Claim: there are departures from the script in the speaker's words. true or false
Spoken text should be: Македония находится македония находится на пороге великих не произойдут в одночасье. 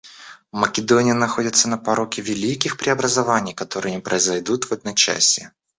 true